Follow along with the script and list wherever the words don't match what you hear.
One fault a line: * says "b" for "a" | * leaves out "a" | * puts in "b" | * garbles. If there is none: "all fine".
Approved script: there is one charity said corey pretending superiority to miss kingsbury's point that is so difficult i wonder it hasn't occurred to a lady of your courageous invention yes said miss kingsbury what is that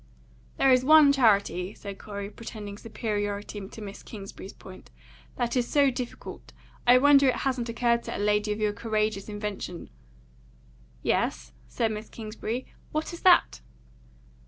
all fine